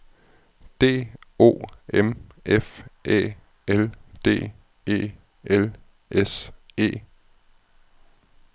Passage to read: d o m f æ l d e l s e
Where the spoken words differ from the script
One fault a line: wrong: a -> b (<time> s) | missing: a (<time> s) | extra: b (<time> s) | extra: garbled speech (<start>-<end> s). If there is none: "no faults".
no faults